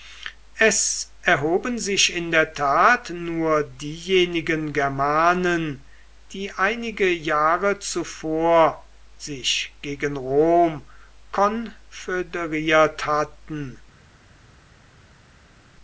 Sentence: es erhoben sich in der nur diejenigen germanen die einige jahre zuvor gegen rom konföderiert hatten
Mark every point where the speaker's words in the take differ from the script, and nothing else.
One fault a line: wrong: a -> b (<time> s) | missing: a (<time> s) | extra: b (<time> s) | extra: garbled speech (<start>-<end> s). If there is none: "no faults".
extra: tat (2.5 s)
extra: sich (9.2 s)